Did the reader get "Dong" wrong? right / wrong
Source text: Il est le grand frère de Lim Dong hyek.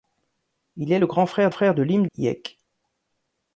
wrong